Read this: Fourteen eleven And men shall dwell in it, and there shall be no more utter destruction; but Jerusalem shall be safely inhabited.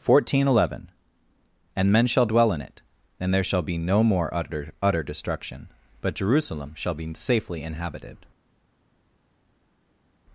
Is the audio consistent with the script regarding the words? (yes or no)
no